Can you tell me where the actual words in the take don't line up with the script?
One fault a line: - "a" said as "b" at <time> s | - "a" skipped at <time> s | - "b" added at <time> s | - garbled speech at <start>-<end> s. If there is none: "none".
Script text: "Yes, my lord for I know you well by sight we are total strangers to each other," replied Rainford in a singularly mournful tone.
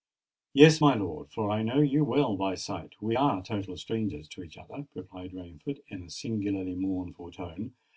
none